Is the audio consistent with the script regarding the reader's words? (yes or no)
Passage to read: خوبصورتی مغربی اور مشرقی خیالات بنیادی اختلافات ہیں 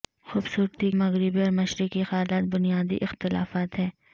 yes